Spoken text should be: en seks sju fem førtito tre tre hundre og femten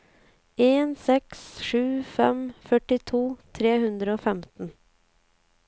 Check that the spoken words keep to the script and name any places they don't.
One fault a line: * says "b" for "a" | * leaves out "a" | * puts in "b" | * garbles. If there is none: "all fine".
* leaves out "tre"